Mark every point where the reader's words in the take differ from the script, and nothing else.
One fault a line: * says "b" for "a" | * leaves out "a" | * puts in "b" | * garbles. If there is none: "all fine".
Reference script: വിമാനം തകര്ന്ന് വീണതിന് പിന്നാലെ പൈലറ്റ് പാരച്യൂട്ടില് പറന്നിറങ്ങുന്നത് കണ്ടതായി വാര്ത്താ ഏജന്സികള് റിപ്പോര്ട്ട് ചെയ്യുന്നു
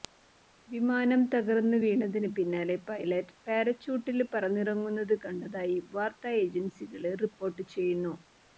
all fine